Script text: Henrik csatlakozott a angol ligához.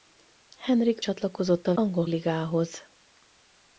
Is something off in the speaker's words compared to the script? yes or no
no